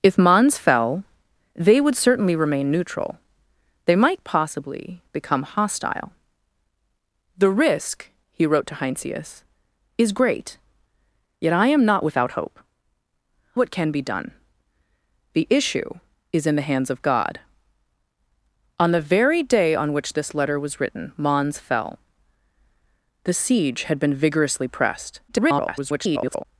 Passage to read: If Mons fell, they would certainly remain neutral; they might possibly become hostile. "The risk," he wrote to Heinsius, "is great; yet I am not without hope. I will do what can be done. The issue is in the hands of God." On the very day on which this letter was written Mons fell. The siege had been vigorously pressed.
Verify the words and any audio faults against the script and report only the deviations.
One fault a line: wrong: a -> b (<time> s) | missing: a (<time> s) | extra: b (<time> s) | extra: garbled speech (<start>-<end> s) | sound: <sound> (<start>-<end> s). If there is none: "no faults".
missing: I will do (12.6 s)
extra: garbled speech (25.3-26.4 s)